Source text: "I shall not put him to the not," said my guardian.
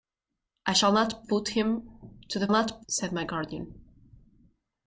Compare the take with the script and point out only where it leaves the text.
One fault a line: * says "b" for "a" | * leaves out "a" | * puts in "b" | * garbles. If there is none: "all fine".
all fine